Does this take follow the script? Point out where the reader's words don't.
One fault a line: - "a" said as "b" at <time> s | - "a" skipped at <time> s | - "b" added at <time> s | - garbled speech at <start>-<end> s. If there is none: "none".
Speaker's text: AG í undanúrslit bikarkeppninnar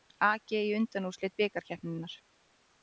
none